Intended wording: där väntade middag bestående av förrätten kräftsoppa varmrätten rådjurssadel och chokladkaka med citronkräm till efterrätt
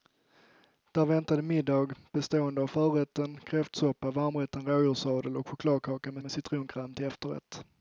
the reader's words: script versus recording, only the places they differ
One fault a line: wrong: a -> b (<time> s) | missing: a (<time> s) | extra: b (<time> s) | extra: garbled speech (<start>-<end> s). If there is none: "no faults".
extra: med (6.2 s)